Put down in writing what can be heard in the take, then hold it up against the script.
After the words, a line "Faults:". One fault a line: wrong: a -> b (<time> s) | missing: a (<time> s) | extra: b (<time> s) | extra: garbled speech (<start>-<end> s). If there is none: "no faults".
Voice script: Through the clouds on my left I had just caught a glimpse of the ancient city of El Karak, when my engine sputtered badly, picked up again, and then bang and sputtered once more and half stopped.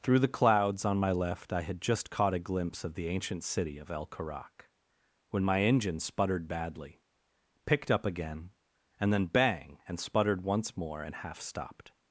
Through the clouds on my left I had just caught a glimpse of the ancient city of El Karak, when my engine sputtered badly, picked up again, and then bang and sputtered once more and half stopped.
Faults:
no faults